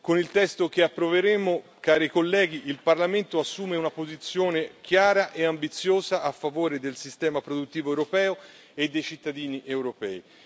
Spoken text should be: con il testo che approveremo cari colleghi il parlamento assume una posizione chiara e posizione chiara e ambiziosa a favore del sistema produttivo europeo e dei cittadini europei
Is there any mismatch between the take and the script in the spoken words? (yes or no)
yes